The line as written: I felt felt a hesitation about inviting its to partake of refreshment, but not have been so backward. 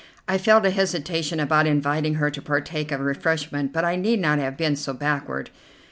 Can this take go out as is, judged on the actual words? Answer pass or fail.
fail